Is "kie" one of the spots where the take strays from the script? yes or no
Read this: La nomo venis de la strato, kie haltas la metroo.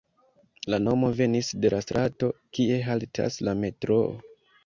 no